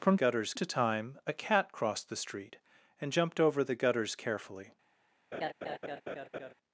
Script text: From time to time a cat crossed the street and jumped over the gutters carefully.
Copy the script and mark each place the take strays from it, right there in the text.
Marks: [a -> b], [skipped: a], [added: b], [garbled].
From [time -> gutters] to time a cat crossed the street and jumped over the gutters carefully.